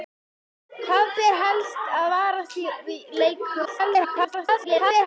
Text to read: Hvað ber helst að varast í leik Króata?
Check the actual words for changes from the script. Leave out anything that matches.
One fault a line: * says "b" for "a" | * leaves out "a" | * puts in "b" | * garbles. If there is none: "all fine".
* garbles